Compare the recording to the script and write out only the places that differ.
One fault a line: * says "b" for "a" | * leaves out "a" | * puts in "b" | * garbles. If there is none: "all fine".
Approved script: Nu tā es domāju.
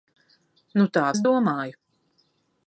all fine